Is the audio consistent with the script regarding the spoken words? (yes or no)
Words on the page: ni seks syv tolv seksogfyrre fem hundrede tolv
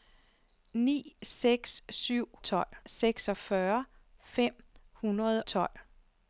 yes